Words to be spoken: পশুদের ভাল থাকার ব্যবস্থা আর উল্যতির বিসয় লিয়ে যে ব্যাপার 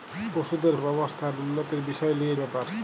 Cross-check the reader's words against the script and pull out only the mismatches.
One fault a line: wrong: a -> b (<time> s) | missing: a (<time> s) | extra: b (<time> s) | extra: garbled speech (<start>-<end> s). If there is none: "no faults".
missing: ভাল থাকার (0.8 s)
missing: যে (2.4 s)